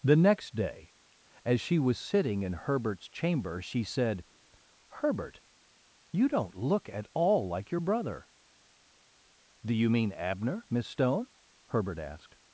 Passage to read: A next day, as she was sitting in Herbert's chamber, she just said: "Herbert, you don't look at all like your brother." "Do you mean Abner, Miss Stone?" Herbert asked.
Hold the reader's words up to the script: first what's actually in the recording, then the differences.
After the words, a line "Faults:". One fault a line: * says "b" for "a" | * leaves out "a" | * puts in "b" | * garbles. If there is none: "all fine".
The next day, as she was sitting in Herbert's chamber, she said: "Herbert, you don't look at all like your brother." "Do you mean Abner, Miss Stone?" Herbert asked.
Faults:
* says "The" for "A"
* leaves out "just"